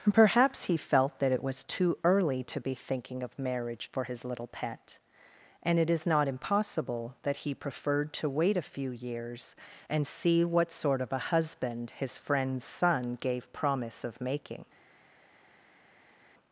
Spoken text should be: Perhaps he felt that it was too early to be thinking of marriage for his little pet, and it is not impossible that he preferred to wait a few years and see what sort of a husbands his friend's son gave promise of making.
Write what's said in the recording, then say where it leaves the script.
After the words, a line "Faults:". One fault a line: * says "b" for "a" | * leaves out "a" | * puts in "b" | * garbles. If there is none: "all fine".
Perhaps he felt that it was too early to be thinking of marriage for his little pet, and it is not impossible that he preferred to wait a few years and see what sort of a husband his friend's son gave promise of making.
Faults:
* says "husband" for "husbands"